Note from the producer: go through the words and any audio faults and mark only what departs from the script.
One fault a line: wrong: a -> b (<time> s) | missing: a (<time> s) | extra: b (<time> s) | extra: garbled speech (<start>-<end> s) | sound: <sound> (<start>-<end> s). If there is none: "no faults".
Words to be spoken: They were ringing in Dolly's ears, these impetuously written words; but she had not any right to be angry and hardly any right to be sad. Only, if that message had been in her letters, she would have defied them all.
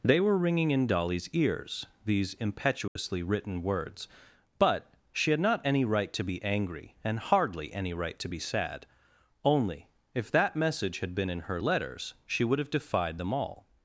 sound: dropout (2.9-3.0 s)